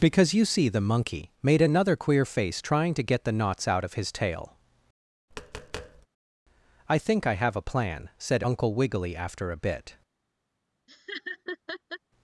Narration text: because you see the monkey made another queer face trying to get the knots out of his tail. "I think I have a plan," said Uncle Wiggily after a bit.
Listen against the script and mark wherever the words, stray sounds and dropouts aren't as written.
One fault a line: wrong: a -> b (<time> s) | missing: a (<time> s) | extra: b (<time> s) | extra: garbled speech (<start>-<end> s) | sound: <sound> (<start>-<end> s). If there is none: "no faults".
sound: tap (5.3-6.1 s)
sound: laugh (10.9-12.0 s)